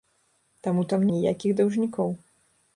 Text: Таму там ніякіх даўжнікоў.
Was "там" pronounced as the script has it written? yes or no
yes